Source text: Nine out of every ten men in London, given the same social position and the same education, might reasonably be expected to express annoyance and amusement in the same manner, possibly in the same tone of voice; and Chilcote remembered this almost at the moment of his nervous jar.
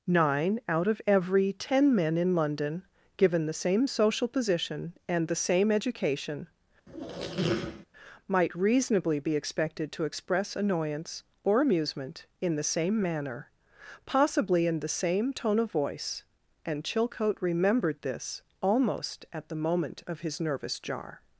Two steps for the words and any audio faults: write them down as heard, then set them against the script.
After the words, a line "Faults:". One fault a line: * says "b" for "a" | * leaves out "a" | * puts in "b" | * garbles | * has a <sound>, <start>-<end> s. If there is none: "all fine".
Nine out of every ten men in London, given the same social position and the same education, might reasonably be expected to express annoyance or amusement in the same manner, possibly in the same tone of voice; and Chilcote remembered this almost at the moment of his nervous jar.
Faults:
* has a squeak, 6.9-7.9 s
* says "or" for "and"